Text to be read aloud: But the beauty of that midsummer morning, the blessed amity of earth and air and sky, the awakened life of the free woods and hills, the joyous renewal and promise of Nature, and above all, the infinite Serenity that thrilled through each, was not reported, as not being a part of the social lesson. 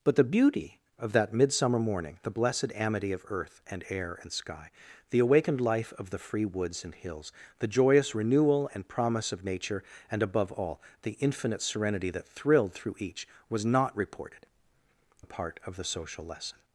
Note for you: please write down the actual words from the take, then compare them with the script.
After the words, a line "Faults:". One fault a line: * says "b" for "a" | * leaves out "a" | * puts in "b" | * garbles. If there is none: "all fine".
But the beauty of that midsummer morning, the blessed amity of earth and air and sky, the awakened life of the free woods and hills, the joyous renewal and promise of Nature, and above all, the infinite Serenity that thrilled through each, was not reported, a part of the social lesson.
Faults:
* leaves out "as not being"